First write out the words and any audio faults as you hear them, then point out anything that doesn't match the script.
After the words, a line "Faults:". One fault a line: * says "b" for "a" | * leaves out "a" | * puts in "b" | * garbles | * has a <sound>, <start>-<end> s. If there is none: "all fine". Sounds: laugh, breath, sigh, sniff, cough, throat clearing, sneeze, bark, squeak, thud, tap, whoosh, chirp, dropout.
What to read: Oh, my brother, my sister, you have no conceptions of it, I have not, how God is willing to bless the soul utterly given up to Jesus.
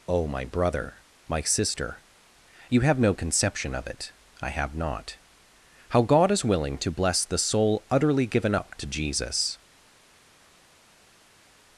Oh, my brother, my sister, you have no conception of it, I have not, how God is willing to bless the soul utterly given up to Jesus.
Faults:
* says "conception" for "conceptions"